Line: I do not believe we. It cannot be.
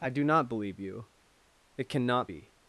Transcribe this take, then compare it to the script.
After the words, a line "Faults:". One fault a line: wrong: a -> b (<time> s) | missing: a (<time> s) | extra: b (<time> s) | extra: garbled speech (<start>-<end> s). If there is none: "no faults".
I do not believe you. It cannot be.
Faults:
wrong: we -> you (0.8 s)